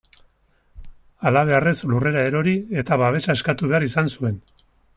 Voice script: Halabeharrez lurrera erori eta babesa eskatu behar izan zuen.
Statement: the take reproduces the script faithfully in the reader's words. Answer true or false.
true